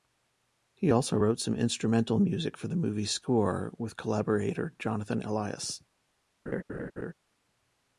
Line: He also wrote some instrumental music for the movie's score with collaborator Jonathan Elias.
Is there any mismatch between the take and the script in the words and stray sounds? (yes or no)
yes